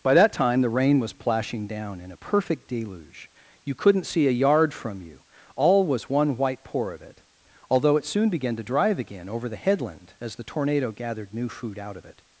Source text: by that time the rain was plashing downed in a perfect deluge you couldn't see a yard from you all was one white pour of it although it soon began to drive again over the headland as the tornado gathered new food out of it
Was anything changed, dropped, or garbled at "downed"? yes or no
yes